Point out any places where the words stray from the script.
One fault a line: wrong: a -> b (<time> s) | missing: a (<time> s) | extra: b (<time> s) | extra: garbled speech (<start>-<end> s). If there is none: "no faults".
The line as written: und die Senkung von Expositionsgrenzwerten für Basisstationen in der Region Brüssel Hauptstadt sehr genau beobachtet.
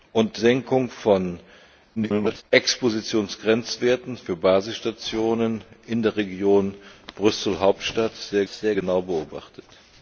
missing: die (0.4 s)
extra: garbled speech (2.0-2.4 s)
extra: sehr (8.5 s)